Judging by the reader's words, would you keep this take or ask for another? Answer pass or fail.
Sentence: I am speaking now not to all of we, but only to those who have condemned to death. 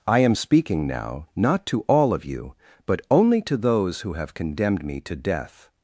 fail